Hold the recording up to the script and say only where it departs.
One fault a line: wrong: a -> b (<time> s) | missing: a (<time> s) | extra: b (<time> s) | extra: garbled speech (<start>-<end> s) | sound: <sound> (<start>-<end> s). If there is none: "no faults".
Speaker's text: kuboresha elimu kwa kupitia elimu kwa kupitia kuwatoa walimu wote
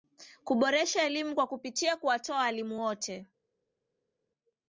missing: elimu kwa kupitia (2.0 s)